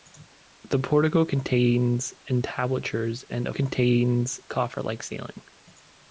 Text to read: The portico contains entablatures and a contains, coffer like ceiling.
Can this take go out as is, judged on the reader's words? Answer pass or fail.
pass